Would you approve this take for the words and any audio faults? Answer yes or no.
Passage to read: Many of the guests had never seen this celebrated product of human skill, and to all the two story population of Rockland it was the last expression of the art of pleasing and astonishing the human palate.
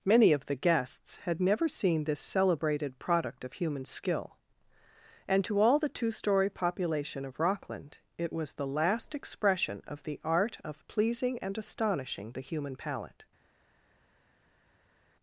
yes